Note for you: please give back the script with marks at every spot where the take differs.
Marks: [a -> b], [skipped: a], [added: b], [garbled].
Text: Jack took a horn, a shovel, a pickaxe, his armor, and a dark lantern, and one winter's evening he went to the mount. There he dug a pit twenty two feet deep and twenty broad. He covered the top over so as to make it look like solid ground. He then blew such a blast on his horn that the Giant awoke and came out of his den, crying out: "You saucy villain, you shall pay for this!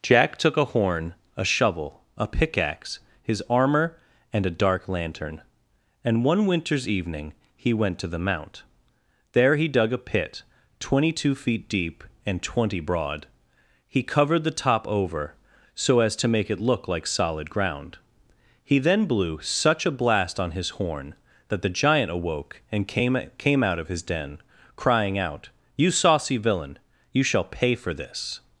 Jack took a horn, a shovel, a pickaxe, his armor, and a dark lantern, and one winter's evening he went to the mount. There he dug a pit twenty two feet deep and twenty broad. He covered the top over so as to make it look like solid ground. He then blew such a blast on his horn that the Giant awoke and came [added: came] out of his den, crying out: "You saucy villain, you shall pay for this!